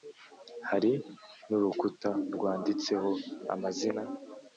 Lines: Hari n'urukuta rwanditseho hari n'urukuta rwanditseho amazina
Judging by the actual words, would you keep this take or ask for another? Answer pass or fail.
fail